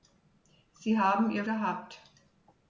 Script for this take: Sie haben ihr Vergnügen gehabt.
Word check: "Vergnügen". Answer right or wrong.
wrong